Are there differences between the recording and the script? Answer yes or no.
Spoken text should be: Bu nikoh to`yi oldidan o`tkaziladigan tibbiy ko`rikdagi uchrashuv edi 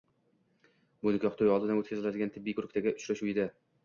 no